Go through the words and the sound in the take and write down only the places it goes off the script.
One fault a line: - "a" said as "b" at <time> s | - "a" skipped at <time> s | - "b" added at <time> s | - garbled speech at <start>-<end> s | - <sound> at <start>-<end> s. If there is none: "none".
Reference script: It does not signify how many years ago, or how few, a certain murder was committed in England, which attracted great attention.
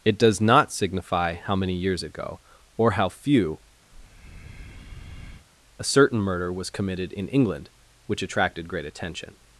- breath at 3.9-5.5 s